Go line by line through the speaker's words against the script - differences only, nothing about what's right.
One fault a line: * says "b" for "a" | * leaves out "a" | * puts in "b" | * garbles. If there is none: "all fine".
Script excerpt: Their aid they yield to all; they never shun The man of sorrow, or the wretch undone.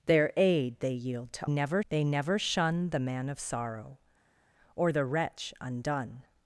* says "never" for "all"